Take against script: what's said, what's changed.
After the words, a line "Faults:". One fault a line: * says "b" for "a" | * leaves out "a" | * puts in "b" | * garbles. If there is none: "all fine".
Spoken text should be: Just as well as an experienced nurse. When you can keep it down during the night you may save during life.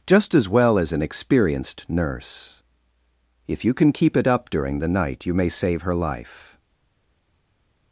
Just as well as an experienced nurse. If you can keep it up during the night you may save her life.
Faults:
* says "If" for "When"
* says "up" for "down"
* says "her" for "during"